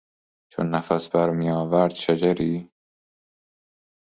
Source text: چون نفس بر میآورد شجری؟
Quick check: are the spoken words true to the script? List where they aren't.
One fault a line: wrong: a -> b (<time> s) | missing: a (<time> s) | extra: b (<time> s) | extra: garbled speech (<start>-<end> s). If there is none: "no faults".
no faults